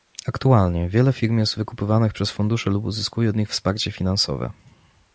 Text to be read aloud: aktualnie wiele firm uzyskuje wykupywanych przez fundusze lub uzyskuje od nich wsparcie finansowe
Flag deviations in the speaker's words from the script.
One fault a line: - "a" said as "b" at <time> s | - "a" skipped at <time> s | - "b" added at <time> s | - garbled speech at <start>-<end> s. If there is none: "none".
- "uzyskuje" said as "jest" at 1.4 s